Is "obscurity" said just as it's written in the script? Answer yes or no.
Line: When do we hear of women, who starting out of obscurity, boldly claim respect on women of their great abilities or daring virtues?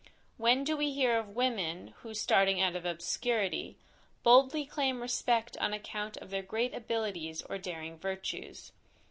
yes